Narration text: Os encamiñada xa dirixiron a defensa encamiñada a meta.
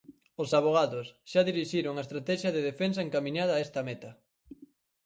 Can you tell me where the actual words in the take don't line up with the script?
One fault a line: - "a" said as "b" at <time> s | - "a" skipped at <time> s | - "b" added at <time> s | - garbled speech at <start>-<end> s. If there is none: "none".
- "encamiñada" said as "avogados" at 0.6 s
- "estratexia de" added at 2.1 s
- "esta" added at 3.7 s